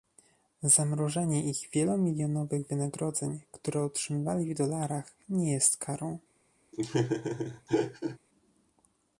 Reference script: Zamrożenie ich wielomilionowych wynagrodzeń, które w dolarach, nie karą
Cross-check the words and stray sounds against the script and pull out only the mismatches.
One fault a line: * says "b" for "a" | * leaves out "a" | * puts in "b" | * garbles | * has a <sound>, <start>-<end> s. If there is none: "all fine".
* puts in "otrzymywali"
* puts in "jest"
* has a laugh, 6.7-8.2 s